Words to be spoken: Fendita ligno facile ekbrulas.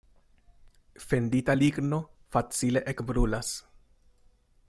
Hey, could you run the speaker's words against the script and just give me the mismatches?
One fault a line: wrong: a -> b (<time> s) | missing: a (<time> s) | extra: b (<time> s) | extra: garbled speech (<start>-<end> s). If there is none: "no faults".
no faults